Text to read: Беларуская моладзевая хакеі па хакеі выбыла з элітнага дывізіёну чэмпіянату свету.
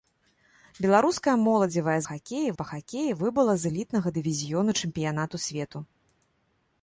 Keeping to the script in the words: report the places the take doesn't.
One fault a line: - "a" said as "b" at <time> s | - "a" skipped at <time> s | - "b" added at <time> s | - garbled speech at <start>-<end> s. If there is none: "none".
none